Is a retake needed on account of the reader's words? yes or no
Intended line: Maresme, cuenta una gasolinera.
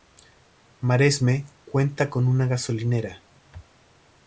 yes